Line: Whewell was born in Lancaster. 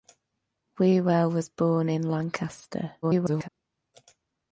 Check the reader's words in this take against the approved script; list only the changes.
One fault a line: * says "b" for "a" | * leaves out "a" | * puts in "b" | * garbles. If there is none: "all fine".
* garbles